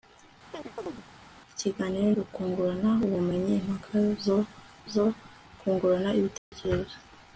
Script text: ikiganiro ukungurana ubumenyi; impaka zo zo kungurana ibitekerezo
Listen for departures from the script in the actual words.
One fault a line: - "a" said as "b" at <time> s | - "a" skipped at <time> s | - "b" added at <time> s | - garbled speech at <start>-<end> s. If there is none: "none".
none